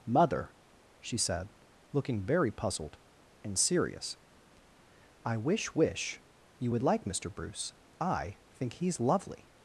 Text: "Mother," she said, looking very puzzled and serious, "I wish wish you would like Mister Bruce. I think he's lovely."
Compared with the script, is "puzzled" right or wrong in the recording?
right